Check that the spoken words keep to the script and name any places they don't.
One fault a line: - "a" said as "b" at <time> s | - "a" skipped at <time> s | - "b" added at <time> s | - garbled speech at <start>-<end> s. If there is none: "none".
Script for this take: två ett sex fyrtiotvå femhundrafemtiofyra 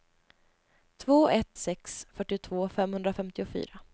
none